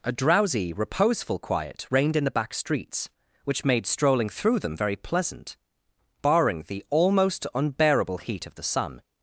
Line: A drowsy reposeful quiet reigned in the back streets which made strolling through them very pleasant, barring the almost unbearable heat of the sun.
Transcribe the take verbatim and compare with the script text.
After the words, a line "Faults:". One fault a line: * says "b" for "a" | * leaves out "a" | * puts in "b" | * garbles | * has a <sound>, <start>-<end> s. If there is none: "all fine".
A drowsy reposeful quiet reigned in the back streets which made strolling through them very pleasant, barring the almost unbearable heat of the sun.
Faults:
all fine